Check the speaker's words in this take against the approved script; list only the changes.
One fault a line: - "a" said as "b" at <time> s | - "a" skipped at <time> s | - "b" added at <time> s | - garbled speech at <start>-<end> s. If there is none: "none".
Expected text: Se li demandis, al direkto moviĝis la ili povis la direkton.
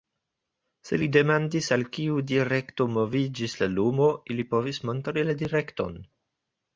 - "kiu" added at 2.0 s
- "lumo" added at 3.7 s
- "montri" added at 4.9 s